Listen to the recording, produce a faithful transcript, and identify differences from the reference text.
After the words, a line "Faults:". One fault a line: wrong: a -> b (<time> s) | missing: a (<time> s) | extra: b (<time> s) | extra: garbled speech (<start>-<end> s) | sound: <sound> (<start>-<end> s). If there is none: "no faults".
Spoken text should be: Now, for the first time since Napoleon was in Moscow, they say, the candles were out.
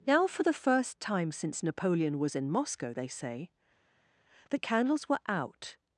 Now, for the first time since Napoleon was in Moscow, they say, the candles were out.
Faults:
no faults